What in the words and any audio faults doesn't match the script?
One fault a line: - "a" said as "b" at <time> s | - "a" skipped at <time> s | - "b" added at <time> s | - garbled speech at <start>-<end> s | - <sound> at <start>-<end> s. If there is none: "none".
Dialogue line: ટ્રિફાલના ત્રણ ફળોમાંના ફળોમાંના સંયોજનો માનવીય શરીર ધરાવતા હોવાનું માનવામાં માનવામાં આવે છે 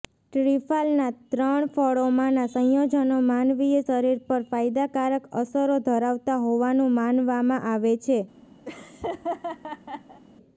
- "ફળોમાંના" skipped at 2.5 s
- "પર ફાયદાકારક અસરો" added at 4.3 s
- "માનવામાં" skipped at 7.7 s
- laugh at 8.7-10.2 s